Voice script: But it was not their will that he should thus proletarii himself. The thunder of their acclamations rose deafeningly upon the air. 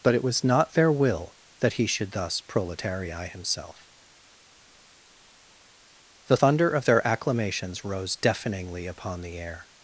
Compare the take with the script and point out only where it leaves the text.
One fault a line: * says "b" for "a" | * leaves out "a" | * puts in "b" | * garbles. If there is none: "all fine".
all fine